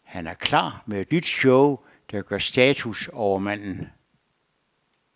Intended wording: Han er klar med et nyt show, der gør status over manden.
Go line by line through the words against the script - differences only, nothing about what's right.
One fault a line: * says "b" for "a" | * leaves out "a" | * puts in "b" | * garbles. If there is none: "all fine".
all fine